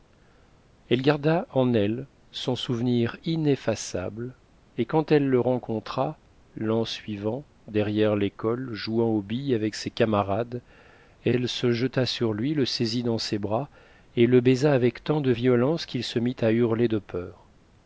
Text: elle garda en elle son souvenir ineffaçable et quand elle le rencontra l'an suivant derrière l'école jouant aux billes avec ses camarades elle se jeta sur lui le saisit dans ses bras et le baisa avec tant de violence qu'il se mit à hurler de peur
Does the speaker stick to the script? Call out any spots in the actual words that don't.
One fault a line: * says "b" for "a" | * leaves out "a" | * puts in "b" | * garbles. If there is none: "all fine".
all fine